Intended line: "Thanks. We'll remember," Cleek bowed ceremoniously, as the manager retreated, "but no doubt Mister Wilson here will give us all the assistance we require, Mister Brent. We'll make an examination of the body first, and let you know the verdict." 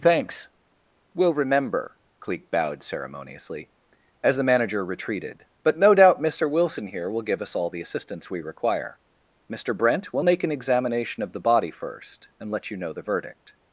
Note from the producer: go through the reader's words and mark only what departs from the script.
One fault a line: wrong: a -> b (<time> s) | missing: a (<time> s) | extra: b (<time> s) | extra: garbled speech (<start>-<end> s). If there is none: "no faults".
no faults